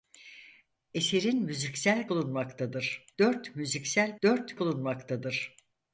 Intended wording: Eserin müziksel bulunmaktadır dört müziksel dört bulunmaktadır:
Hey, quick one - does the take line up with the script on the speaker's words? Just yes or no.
yes